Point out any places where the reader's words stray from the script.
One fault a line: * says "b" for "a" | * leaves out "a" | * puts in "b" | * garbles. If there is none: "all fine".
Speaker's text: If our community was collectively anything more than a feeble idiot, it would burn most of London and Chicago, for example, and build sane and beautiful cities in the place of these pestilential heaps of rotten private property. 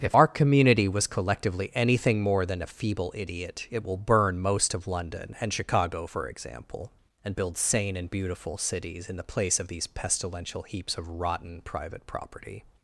* says "will" for "would"